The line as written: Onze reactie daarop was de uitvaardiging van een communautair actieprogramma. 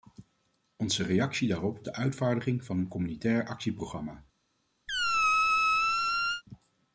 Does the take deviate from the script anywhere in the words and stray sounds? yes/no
yes